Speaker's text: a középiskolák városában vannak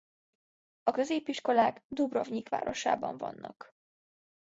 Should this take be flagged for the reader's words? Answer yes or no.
yes